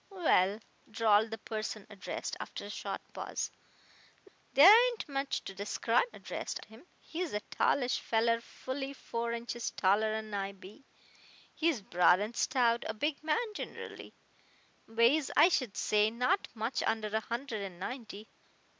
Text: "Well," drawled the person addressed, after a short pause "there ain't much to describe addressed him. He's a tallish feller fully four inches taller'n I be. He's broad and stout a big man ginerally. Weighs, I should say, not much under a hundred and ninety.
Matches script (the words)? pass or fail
pass